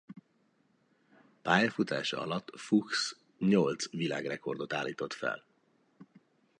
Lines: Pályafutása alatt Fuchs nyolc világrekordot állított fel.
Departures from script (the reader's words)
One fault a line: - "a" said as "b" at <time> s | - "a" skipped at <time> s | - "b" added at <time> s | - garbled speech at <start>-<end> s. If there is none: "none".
none